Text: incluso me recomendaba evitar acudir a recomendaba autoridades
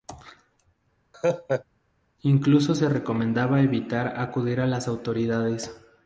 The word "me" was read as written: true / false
false